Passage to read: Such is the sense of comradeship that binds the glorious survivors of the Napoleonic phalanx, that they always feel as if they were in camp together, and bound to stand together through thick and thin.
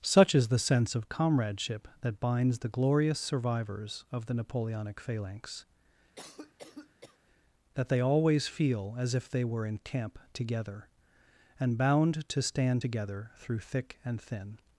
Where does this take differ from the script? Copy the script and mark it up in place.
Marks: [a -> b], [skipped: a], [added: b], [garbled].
Such is the sense of comradeship that binds the glorious survivors of the Napoleonic phalanx, that they always feel as if they were in camp together, and bound to stand together through thick and thin.